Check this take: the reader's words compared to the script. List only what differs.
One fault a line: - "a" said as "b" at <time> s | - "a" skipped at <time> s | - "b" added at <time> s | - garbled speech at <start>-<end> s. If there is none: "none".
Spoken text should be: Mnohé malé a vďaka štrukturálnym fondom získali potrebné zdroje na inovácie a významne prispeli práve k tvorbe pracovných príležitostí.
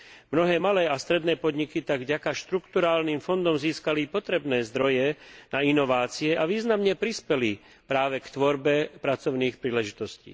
- "stredné podniky tak" added at 0.9 s